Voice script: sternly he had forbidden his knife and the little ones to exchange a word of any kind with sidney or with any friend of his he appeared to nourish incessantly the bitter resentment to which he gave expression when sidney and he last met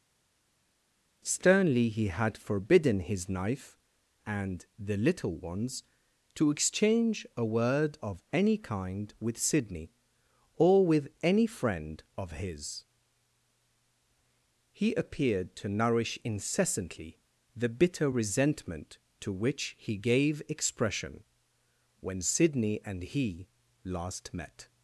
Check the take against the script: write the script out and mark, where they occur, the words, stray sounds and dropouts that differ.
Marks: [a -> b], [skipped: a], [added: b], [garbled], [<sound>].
sternly he had forbidden his knife and the little ones to exchange a word of any kind with sidney or with any friend of his he appeared to nourish incessantly the bitter resentment to which he gave expression when sidney and he last met